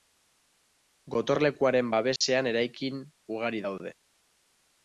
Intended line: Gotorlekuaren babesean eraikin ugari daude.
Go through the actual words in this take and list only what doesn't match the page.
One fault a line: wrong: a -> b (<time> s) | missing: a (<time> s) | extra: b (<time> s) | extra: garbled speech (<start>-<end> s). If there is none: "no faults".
no faults